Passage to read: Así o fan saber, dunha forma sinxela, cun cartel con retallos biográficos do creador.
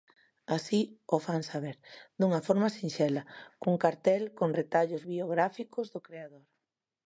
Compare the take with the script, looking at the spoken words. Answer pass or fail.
pass